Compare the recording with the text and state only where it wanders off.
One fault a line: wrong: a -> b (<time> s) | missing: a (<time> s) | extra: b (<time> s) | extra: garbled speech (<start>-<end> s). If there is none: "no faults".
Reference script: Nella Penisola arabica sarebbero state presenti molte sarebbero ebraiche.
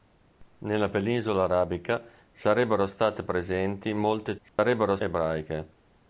no faults